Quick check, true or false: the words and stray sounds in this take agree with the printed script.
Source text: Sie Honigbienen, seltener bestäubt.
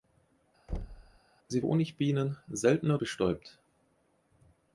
false